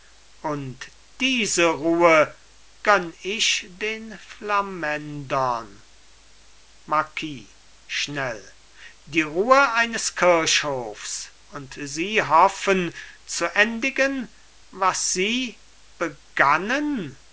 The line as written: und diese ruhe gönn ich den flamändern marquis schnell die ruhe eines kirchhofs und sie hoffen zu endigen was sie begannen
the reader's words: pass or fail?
pass